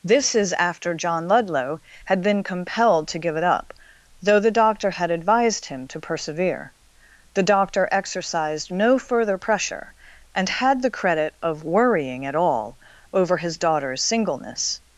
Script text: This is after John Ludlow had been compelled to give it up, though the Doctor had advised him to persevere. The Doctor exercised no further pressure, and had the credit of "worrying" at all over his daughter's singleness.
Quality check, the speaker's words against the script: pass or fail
pass